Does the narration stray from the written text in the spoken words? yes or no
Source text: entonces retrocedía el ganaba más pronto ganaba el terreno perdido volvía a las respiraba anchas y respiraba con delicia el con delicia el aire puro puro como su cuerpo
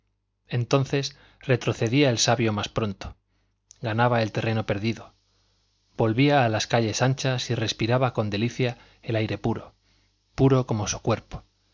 yes